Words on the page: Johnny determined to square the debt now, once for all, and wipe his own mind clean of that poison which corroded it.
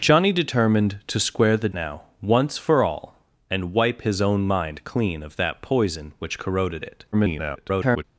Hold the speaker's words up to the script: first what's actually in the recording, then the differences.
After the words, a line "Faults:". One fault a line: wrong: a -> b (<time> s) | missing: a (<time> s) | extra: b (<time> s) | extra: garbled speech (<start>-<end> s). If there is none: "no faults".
Johnny determined to square the now, once for all, and wipe his own mind clean of that poison which corroded it. [garbled]
Faults:
missing: debt (1.7 s)
extra: garbled speech (7.1-8.0 s)